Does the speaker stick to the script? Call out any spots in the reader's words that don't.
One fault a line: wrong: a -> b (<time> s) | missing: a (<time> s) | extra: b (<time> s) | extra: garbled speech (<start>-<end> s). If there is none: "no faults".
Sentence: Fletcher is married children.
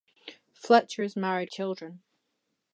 no faults